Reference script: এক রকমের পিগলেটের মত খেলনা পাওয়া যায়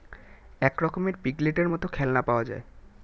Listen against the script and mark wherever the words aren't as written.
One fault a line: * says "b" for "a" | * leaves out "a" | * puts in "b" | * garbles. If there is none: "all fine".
all fine